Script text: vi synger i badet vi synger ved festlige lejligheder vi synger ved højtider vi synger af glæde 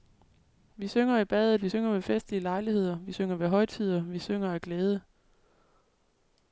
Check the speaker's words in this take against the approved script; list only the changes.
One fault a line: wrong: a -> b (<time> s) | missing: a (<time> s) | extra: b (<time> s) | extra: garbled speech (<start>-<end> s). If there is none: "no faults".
no faults